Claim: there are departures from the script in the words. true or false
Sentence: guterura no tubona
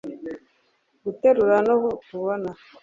false